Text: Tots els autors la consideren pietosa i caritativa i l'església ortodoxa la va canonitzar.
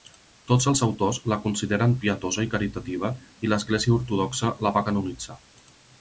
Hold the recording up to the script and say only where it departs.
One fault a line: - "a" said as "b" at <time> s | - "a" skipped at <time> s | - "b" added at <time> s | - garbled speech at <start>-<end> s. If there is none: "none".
none